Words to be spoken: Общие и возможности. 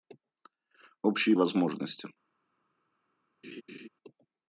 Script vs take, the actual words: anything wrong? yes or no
no